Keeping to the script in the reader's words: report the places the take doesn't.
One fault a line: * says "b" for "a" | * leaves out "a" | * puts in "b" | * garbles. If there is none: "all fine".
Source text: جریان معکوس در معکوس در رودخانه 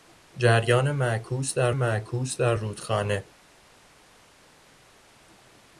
all fine